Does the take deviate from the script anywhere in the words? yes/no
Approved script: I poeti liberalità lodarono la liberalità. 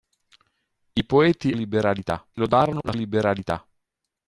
no